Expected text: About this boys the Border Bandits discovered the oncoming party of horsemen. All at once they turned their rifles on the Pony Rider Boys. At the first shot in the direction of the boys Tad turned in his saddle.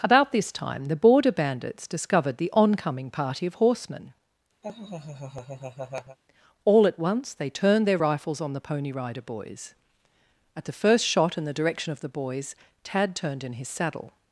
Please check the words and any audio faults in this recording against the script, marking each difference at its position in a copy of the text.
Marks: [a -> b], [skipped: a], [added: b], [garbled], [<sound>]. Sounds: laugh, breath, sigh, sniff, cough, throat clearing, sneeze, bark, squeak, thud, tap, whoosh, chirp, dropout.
About this [boys -> time] the Border Bandits discovered the oncoming party of horsemen. [laugh] All at once they turned their rifles on the Pony Rider Boys. At the first shot in the direction of the boys Tad turned in his saddle.